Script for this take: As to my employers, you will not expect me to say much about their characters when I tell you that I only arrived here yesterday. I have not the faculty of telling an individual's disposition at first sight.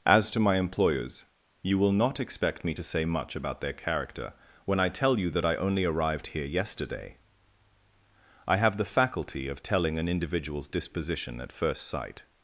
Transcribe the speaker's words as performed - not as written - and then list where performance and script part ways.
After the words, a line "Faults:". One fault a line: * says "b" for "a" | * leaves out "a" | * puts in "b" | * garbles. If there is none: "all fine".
As to my employers, you will not expect me to say much about their character when I tell you that I only arrived here yesterday. I have the faculty of telling an individual's disposition at first sight.
Faults:
* says "character" for "characters"
* leaves out "not"